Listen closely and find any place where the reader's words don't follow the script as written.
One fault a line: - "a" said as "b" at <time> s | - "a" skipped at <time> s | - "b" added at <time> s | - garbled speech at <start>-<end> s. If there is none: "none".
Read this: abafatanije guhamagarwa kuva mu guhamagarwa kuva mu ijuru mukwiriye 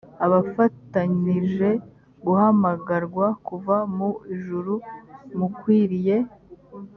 - "guhamagarwa kuva mu" skipped at 4.1 s